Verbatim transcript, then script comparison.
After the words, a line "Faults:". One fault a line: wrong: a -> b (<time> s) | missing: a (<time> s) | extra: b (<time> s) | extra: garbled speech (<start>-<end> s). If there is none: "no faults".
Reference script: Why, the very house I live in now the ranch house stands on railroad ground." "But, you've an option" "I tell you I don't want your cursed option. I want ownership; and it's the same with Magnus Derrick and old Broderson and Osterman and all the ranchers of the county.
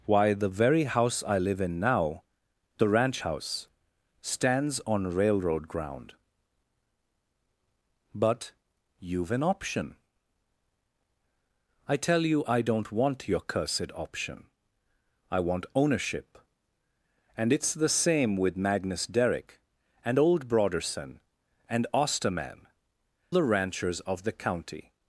Why, the very house I live in now the ranch house stands on railroad ground." "But, you've an option" "I tell you I don't want your cursed option. I want ownership; and it's the same with Magnus Derrick and old Broderson and Osterman the ranchers of the county.
Faults:
missing: and all (22.7 s)